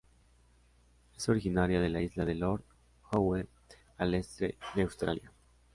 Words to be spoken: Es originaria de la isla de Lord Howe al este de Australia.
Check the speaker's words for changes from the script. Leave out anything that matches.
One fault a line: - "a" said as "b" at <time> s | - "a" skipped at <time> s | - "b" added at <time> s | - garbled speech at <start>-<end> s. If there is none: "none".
none